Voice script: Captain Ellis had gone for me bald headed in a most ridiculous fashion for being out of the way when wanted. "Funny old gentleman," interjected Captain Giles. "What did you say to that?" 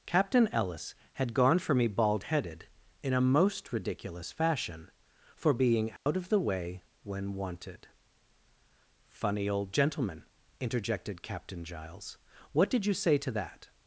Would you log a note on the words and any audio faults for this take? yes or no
yes